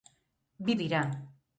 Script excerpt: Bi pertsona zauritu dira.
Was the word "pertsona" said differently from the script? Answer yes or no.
yes